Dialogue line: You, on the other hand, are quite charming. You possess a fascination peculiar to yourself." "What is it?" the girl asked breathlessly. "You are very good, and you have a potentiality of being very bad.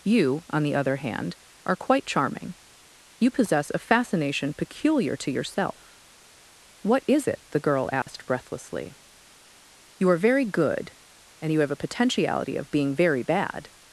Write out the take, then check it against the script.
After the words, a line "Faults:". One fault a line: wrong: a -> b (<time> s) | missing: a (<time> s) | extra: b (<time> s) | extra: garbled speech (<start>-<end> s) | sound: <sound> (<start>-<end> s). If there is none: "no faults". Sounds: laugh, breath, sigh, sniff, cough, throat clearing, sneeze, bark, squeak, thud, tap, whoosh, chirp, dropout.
You, on the other hand, are quite charming. You possess a fascination peculiar to yourself." "What is it?" the girl asked breathlessly. "You are very good, and you have a potentiality of being very bad.
Faults:
sound: dropout (8.0-8.1 s)